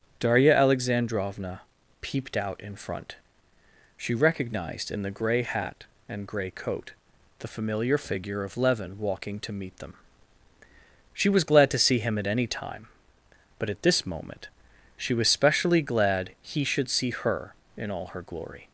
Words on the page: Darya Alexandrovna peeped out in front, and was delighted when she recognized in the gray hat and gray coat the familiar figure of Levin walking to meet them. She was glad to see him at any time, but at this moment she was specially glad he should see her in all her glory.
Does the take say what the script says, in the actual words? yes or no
no